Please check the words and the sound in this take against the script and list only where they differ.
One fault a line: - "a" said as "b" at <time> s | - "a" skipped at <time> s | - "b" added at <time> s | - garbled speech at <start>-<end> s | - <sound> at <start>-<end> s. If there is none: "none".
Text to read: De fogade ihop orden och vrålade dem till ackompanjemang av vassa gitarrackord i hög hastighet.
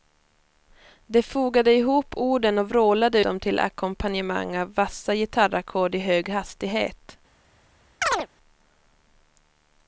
- chirp at 8.0-8.3 s